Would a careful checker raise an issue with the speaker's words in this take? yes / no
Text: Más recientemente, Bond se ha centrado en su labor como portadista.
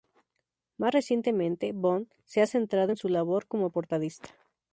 no